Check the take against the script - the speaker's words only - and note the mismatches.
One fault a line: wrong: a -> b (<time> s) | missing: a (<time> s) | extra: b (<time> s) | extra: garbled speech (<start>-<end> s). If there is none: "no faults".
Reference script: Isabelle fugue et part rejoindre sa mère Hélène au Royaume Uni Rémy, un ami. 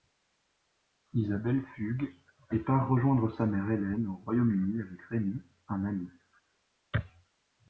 extra: avec (4.8 s)